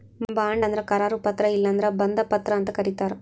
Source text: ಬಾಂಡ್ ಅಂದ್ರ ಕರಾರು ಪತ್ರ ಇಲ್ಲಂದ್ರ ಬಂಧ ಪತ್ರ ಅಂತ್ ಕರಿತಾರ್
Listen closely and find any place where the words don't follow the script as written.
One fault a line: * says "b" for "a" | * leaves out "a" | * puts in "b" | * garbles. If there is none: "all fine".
all fine